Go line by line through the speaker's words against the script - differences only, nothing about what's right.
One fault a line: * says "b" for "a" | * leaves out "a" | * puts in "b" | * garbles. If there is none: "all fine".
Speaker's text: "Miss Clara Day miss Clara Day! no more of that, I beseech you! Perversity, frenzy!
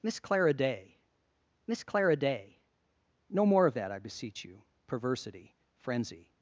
all fine